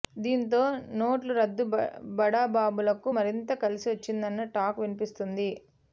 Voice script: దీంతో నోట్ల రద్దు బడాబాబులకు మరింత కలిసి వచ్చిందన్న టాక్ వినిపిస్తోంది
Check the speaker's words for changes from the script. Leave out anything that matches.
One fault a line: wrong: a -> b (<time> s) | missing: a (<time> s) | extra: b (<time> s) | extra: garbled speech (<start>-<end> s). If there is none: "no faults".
no faults